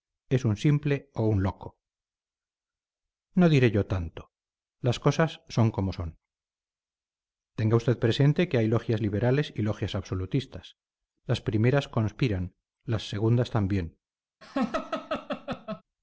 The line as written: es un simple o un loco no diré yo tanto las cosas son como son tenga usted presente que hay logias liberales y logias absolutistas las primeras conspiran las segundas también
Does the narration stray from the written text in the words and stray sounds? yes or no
yes